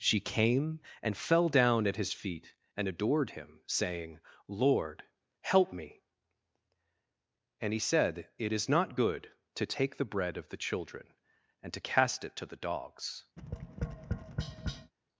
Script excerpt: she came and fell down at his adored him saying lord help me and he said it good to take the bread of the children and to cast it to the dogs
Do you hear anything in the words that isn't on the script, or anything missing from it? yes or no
yes